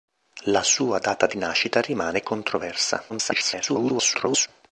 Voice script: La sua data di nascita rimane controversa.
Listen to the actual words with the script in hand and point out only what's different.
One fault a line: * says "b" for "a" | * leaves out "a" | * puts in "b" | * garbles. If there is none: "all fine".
* garbles